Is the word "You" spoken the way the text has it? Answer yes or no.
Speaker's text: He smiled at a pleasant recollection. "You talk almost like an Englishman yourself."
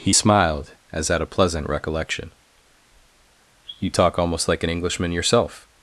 yes